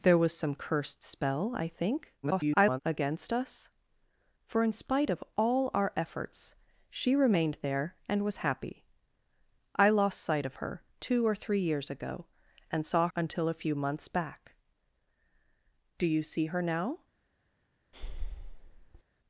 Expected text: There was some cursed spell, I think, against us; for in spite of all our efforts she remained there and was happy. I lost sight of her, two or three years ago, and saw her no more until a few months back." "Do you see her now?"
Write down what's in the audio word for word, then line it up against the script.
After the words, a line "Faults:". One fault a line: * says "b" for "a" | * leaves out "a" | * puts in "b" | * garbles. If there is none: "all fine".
There was some cursed spell, I think, [garbled] against us; for in spite of all our efforts she remained there and was happy. I lost sight of her, two or three years ago, and saw until a few months back." "Do you see her now?"
Faults:
* garbles
* leaves out "her no more"